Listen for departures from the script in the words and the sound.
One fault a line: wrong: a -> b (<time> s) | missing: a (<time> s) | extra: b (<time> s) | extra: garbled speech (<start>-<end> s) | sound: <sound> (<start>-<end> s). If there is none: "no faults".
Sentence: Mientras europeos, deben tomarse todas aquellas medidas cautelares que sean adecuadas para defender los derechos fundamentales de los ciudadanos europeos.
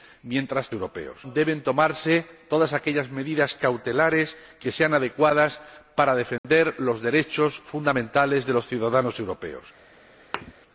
sound: dropout (6.4-6.4 s)
sound: thud (10.3-10.5 s)